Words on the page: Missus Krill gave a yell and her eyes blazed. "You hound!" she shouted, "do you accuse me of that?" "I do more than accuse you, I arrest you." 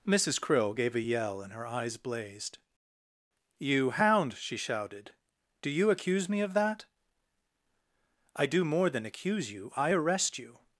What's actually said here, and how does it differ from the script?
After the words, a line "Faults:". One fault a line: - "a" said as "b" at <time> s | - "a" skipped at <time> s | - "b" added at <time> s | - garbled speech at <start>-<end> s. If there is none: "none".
Missus Krill gave a yell and her eyes blazed. "You hound!" she shouted, "do you accuse me of that?" "I do more than accuse you, I arrest you."
Faults:
none